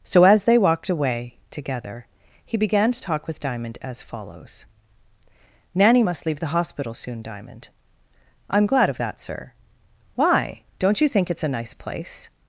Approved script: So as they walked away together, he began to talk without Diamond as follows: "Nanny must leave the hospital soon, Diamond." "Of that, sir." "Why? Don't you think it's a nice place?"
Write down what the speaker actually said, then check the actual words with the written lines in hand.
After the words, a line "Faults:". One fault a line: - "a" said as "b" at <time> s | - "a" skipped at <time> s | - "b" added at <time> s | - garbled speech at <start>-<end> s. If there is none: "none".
So as they walked away together, he began to talk with Diamond as follows: "Nanny must leave the hospital soon, Diamond." "I'm glad of that, sir." "Why? Don't you think it's a nice place?"
Faults:
- "without" said as "with" at 3.3 s
- "I'm glad" added at 8.5 s